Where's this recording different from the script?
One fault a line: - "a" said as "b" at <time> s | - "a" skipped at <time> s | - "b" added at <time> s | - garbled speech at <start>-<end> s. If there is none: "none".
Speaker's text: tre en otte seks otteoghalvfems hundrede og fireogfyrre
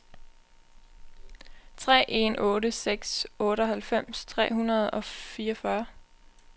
- "tre" added at 4.2 s